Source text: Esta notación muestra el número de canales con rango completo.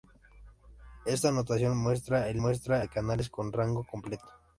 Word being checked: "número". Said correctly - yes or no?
no